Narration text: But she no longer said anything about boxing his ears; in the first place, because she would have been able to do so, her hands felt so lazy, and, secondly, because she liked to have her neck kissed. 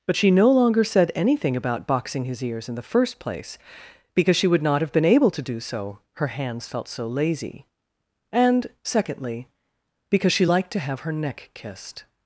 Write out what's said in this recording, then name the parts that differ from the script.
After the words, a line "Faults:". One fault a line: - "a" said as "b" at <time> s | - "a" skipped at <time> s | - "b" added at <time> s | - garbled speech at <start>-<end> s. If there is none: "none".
But she no longer said anything about boxing his ears; in the first place, because she would not have been able to do so, her hands felt so lazy, and, secondly, because she liked to have her neck kissed.
Faults:
- "not" added at 4.6 s